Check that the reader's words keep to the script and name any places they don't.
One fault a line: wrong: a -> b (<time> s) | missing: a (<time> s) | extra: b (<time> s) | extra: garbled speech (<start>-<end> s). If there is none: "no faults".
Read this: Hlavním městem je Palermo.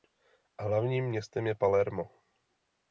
no faults